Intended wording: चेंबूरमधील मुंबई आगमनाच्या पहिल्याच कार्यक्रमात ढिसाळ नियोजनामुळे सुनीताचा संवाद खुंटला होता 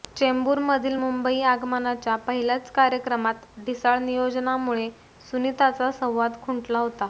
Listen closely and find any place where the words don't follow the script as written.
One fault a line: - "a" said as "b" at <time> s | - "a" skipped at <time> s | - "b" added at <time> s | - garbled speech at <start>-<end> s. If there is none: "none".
none